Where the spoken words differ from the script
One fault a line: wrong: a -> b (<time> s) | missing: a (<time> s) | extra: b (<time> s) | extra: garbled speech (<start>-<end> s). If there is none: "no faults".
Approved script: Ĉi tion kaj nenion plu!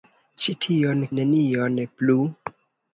missing: kaj (1.0 s)